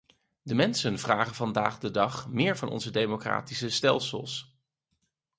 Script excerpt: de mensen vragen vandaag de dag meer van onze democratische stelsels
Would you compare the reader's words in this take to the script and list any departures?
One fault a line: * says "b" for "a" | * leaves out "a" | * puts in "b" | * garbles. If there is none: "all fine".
all fine